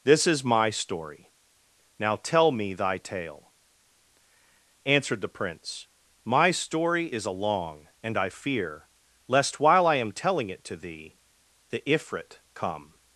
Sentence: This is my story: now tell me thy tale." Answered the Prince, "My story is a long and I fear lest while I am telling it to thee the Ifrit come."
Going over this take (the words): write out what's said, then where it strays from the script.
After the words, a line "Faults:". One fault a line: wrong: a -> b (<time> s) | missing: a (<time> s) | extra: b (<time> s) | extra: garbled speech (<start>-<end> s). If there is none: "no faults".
This is my story: now tell me thy tale." Answered the Prince, "My story is a long and I fear lest while I am telling it to thee the Ifrit come."
Faults:
no faults